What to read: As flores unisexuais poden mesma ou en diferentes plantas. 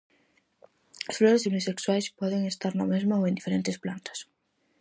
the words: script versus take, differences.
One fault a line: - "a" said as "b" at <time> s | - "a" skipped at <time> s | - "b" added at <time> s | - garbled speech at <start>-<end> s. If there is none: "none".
- "estar na" added at 2.5 s